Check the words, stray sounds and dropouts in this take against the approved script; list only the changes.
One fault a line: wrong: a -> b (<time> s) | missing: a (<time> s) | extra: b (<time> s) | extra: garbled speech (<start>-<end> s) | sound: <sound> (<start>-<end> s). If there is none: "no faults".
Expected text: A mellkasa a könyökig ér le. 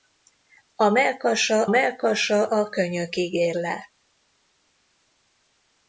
extra: mellkasa (1.7 s)